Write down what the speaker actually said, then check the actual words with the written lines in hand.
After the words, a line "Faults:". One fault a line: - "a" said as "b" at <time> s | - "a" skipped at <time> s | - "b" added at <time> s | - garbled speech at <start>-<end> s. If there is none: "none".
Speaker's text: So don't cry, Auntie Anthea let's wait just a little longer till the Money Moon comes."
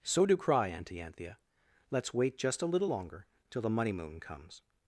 So do cry, Auntie Anthea let's wait just a little longer till the Money Moon comes."
Faults:
- "don't" said as "do" at 0.2 s